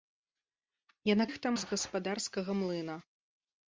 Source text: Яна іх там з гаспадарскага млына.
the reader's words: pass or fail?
pass